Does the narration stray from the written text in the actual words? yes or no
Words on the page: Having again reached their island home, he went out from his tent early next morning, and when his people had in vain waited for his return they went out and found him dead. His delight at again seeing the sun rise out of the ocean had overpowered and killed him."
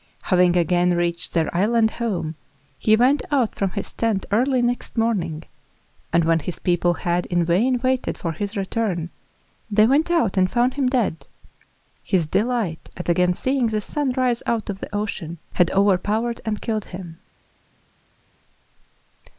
no